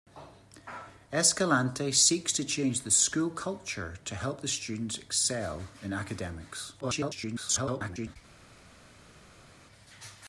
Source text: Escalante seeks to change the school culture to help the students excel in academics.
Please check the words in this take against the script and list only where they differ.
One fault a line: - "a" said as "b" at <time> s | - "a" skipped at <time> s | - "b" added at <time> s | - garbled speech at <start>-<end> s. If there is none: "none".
- garbled speech at 6.8-8.2 s